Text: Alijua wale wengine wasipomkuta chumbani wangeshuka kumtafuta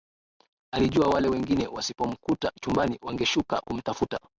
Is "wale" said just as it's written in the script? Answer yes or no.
yes